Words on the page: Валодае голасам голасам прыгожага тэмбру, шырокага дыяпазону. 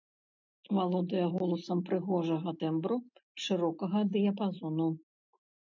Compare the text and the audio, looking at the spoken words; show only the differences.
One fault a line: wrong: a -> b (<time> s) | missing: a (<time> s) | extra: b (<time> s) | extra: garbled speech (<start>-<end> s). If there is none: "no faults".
missing: голасам (1.8 s)